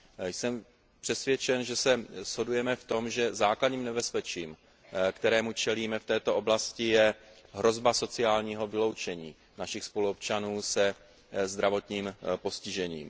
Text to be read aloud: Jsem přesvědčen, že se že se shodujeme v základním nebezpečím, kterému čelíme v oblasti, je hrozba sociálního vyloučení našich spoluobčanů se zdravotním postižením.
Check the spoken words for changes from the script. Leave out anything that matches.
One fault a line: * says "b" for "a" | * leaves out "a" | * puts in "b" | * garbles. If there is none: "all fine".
* says "shodujeme v tom že" for "že se shodujeme v"
* puts in "této"